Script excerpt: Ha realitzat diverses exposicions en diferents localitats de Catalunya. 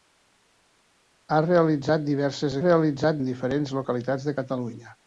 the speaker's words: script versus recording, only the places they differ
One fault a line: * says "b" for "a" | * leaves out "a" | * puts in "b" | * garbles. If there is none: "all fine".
* says "realitzat" for "exposicions"